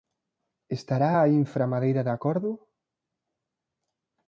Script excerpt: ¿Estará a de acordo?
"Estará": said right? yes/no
yes